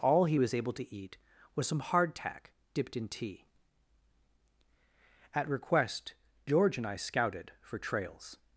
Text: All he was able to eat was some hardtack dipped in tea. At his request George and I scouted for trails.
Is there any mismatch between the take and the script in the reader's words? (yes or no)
yes